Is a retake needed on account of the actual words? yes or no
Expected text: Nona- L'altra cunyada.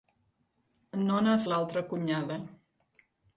no